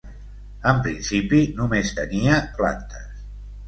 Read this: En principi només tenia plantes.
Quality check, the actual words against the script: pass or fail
pass